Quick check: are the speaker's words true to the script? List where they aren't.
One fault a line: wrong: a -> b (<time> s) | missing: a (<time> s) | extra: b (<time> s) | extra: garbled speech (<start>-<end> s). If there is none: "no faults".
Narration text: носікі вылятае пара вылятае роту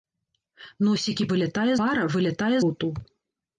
no faults